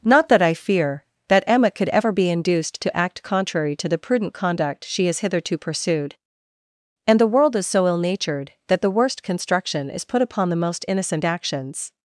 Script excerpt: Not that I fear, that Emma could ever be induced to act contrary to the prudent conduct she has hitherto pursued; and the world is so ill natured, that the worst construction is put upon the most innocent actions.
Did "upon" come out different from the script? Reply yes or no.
no